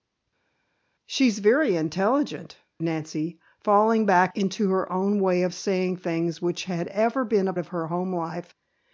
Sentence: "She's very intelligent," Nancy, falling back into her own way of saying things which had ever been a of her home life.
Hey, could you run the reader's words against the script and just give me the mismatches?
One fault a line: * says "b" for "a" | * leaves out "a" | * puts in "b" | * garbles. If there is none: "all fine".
all fine